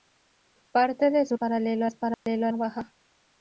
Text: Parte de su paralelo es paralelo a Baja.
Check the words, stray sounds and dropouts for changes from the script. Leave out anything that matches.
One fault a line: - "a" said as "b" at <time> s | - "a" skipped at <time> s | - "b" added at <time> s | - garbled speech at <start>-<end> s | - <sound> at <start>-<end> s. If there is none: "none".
- dropout at 2.1-2.3 s